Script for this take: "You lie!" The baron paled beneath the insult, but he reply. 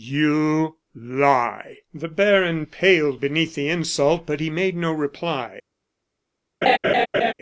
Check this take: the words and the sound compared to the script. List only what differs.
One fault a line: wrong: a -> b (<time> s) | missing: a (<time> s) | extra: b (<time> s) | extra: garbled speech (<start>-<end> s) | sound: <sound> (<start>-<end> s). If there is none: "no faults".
extra: made no (4.5 s)
sound: laugh (6.6-7.3 s)